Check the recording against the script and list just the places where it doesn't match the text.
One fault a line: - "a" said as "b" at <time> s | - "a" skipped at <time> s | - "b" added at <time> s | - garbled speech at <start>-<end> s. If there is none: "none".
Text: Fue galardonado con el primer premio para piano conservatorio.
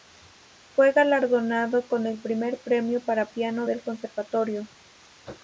- "del" added at 3.6 s